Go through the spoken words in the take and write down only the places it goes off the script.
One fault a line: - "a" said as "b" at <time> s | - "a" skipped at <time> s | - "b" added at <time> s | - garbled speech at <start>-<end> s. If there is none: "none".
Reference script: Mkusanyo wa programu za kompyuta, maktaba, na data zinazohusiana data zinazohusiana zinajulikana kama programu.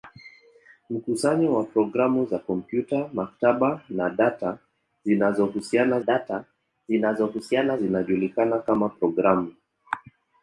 none